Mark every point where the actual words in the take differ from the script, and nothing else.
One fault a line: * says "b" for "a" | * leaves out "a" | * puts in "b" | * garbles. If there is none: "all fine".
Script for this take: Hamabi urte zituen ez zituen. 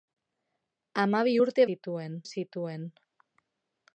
all fine